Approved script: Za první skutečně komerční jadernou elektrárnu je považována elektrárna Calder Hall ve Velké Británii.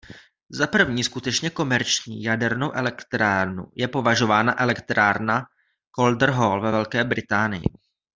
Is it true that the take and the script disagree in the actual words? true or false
false